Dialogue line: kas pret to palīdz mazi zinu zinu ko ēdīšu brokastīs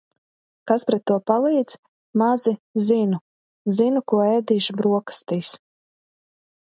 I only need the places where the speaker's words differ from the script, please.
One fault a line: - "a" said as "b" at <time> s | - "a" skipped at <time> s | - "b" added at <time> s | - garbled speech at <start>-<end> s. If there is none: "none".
none